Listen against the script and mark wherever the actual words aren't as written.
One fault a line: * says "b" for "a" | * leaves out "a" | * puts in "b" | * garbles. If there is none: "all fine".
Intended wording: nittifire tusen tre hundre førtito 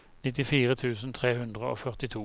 * puts in "og"